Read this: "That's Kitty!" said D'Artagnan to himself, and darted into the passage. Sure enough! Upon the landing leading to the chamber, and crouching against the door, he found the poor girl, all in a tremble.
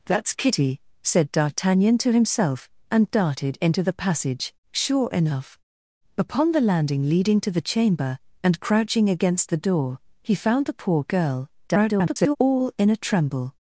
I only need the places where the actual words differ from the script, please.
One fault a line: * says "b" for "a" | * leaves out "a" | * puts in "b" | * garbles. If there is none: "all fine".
* garbles